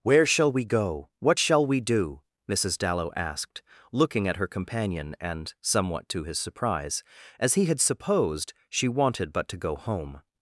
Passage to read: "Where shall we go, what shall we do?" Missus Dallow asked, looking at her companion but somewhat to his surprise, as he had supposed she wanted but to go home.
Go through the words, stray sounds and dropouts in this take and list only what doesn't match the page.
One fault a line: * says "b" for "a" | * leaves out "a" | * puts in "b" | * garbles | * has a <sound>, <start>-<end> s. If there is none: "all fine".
* says "and" for "but"